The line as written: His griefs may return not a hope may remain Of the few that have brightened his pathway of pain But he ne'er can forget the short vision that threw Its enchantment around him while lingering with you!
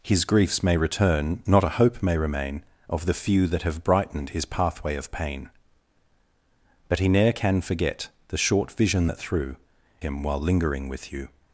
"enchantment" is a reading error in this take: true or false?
true